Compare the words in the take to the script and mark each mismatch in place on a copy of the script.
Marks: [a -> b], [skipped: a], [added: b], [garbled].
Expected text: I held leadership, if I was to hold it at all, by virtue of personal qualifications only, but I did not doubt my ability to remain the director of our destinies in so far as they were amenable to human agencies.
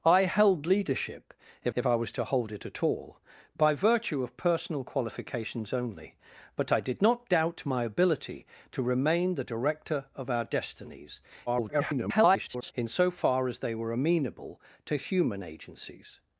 I held leadership, if [added: if] I was to hold it at all, by virtue of personal qualifications only, but I did not doubt my ability to remain the director of our destinies [garbled] in so far as they were amenable to human agencies.